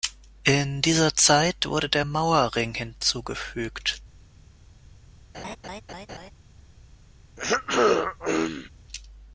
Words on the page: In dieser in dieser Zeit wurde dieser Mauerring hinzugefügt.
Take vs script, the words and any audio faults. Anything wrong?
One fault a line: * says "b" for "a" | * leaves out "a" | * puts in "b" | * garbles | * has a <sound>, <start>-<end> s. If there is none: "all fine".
* leaves out "in dieser"
* says "der" for "dieser"
* has a laugh, 5.3-6.3 s
* has a throat clearing, 7.4-8.7 s